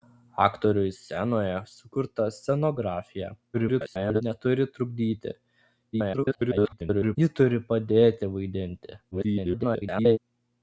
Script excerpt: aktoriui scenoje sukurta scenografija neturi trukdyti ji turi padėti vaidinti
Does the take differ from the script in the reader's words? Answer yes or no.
yes